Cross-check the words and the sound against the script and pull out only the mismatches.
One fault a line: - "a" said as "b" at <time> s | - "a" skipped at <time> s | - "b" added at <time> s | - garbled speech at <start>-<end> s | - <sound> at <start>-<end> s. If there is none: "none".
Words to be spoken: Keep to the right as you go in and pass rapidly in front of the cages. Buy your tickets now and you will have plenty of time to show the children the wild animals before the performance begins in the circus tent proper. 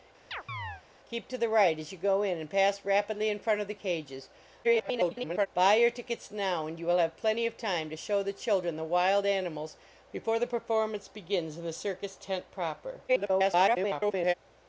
- chirp at 0.3-0.8 s
- garbled speech at 4.6-5.5 s
- garbled speech at 13.1-14.3 s